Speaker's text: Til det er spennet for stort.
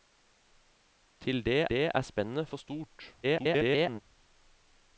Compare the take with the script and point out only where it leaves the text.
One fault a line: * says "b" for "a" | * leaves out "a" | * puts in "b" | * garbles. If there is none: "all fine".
* puts in "det"
* garbles